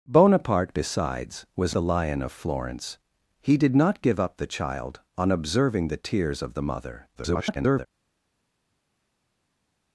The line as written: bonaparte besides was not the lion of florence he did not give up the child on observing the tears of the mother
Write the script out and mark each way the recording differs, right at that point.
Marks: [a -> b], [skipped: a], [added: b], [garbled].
bonaparte besides was [skipped: not] the lion of florence he did not give up the child on observing the tears of the mother [garbled]